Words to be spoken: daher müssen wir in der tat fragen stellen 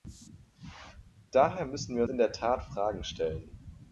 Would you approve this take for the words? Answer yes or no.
yes